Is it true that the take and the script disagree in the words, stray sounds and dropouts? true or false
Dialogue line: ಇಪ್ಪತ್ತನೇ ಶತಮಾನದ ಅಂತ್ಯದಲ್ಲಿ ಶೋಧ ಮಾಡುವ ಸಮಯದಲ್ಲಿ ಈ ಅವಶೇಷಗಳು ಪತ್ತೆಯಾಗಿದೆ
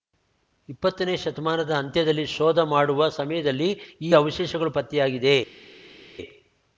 false